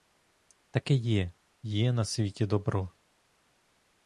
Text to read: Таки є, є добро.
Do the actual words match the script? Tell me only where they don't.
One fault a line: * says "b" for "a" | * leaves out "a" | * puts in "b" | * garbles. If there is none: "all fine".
* puts in "на світі"